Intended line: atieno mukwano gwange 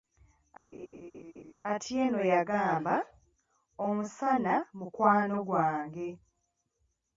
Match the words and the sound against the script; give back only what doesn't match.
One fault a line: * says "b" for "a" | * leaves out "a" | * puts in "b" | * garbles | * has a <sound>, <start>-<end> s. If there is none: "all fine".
* has a laugh, 0.7-1.5 s
* puts in "yagamba omusana"